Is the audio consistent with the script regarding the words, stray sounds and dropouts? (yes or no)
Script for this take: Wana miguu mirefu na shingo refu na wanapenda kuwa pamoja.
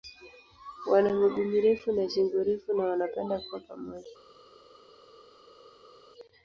yes